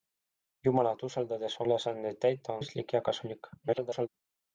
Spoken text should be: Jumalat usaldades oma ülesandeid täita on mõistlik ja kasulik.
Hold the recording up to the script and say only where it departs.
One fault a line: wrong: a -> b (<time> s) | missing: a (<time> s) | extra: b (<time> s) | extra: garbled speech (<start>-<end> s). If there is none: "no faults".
missing: oma (1.6 s)
missing: on (2.6 s)
extra: garbled speech (3.6-4.1 s)